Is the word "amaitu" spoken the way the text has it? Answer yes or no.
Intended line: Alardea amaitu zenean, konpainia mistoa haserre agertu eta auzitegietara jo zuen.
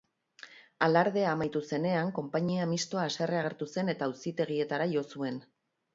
yes